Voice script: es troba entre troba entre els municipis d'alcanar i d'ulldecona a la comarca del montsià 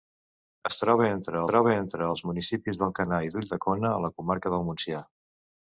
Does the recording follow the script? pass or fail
pass